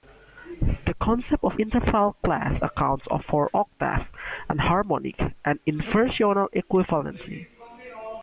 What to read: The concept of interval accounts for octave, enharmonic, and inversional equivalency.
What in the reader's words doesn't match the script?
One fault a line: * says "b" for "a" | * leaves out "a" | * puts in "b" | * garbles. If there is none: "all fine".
* puts in "class"